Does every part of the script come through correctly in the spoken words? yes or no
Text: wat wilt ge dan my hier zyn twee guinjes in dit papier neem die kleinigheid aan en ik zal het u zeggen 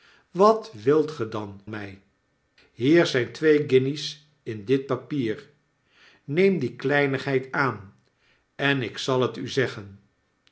yes